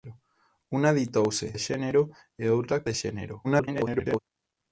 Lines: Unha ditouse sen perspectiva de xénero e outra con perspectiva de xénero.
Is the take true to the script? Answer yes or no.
no